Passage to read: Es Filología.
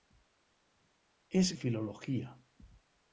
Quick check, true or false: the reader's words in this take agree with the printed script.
true